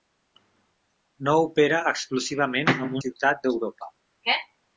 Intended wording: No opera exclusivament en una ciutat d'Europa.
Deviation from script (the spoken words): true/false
true